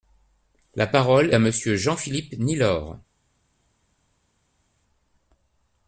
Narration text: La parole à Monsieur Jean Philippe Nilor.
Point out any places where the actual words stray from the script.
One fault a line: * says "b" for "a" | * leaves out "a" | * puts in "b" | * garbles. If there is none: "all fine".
all fine